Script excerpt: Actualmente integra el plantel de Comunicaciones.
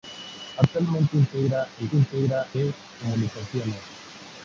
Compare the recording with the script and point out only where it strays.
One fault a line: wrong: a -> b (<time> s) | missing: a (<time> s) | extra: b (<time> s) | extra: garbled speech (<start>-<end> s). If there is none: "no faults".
wrong: plantel -> integra (1.9 s)